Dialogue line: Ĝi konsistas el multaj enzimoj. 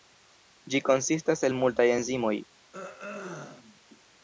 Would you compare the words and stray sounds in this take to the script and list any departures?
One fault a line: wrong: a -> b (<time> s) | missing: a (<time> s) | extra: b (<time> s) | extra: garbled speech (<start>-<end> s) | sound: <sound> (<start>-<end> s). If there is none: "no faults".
sound: throat clearing (2.7-3.8 s)